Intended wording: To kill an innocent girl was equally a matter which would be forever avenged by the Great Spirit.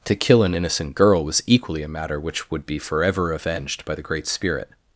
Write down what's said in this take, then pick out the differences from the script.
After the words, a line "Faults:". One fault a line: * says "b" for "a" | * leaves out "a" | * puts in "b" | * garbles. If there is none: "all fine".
To kill an innocent girl was equally a matter which would be forever avenged by the Great Spirit.
Faults:
all fine